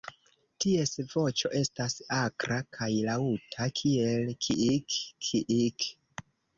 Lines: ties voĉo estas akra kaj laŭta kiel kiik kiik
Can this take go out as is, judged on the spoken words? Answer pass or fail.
pass